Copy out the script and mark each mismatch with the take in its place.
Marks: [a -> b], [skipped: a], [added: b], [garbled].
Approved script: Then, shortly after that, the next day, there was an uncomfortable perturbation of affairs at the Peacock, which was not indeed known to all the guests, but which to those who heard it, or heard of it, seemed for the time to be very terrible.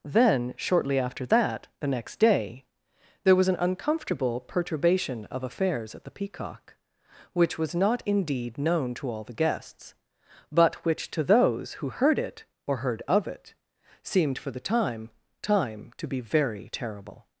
Then, shortly after that, the next day, there was an uncomfortable perturbation of affairs at the Peacock, which was not indeed known to all the guests, but which to those who heard it, or heard of it, seemed for the time [added: time] to be very terrible.